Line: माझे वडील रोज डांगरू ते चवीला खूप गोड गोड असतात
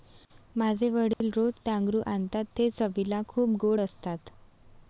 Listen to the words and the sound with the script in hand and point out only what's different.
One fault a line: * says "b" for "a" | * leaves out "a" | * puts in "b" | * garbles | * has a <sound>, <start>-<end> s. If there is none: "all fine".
* has a dropout, 1.1-1.2 s
* puts in "आणतात"
* leaves out "गोड"